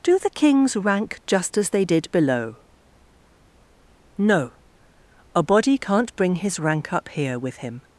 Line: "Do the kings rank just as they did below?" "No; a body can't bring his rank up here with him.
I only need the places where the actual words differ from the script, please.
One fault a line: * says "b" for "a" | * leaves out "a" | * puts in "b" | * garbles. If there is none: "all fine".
all fine